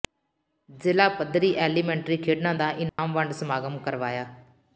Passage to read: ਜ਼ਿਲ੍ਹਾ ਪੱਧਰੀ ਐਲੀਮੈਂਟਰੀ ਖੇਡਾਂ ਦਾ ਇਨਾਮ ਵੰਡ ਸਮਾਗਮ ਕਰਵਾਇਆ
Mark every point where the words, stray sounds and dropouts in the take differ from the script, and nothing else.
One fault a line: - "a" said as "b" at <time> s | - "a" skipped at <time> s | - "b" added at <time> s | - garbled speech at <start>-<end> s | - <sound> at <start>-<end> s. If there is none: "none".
- dropout at 2.9-3.0 s